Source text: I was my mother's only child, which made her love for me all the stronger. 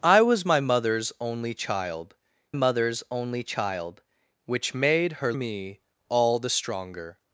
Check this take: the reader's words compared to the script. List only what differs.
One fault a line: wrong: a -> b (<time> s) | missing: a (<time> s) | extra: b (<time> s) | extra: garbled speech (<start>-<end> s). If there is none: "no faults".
extra: mother's only child (2.5 s)
missing: love for (5.3 s)